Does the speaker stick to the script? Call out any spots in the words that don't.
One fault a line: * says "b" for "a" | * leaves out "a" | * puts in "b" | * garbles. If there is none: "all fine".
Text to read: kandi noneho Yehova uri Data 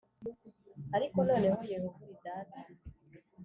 * says "ariko" for "kandi"